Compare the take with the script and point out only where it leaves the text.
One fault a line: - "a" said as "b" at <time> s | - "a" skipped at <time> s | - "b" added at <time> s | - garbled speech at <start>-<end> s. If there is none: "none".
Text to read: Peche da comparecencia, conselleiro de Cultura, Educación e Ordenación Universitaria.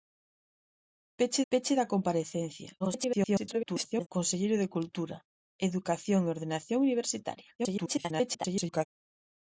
- "peche" added at 1.5 s
- garbled speech at 2.8-4.1 s
- garbled speech at 7.6-8.9 s